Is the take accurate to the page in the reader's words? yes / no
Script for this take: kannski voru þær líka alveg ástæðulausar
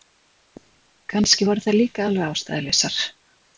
yes